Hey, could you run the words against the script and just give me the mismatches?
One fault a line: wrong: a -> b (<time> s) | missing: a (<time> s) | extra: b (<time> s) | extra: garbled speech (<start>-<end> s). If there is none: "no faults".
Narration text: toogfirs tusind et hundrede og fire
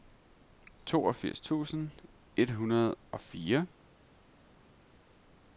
no faults